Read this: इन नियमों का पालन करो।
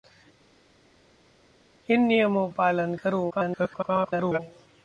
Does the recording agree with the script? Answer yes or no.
no